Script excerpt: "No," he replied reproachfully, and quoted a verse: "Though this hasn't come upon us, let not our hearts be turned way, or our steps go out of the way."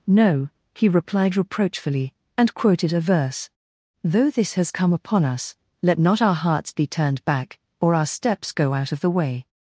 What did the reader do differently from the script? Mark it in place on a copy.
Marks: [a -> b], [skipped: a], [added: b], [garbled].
"No," he replied reproachfully, and quoted a verse: "Though this [hasn't -> has] come upon us, let not our hearts be turned [way, -> back] or our steps go out of the way."